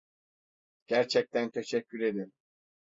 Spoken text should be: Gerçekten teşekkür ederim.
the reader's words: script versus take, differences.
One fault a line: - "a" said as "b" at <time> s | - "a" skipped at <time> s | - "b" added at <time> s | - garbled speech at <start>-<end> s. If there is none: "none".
none